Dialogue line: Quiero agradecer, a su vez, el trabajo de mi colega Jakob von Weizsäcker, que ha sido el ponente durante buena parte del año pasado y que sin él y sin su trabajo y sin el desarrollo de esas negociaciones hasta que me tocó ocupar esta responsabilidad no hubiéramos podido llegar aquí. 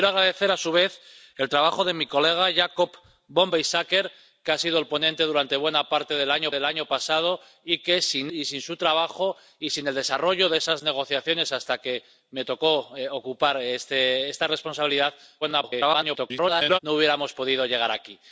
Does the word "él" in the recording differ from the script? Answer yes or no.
yes